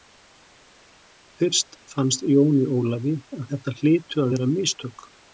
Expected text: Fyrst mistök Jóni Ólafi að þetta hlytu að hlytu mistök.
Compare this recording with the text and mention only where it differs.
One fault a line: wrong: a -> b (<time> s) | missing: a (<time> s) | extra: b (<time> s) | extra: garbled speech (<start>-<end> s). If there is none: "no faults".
wrong: mistök -> fannst (1.9 s)
wrong: hlytu -> vera (4.3 s)